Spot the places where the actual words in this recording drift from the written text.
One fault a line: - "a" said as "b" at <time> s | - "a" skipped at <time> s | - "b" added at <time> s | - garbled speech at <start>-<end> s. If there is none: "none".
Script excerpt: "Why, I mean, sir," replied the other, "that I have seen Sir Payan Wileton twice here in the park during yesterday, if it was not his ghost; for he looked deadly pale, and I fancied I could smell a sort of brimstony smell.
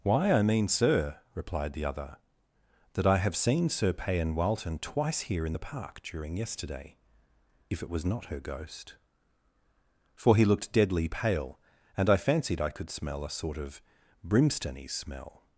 - "his" said as "her" at 8.2 s